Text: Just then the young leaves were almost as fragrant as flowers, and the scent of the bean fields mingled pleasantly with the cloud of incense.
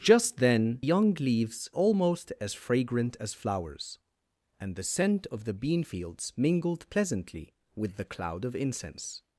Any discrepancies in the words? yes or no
yes